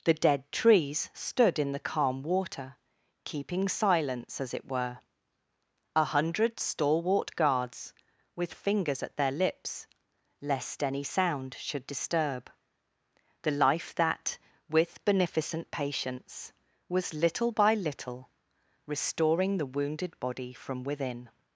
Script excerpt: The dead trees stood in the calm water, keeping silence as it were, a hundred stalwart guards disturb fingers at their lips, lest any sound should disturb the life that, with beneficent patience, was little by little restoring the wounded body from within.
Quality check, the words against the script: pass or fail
fail